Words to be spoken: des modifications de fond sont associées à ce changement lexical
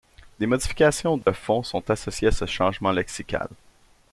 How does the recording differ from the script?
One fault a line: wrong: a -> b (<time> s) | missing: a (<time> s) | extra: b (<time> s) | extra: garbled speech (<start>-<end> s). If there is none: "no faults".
no faults